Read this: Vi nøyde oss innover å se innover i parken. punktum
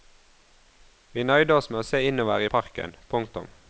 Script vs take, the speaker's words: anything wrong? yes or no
yes